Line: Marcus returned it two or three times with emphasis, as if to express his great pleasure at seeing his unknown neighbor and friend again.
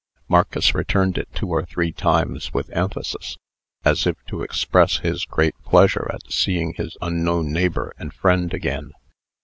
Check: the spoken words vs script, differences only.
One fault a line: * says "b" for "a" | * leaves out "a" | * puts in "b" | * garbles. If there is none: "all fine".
all fine